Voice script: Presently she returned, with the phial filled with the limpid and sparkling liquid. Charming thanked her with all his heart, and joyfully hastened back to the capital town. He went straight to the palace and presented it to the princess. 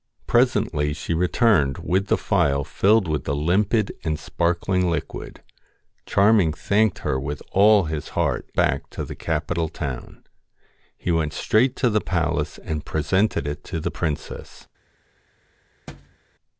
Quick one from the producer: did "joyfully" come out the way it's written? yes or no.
no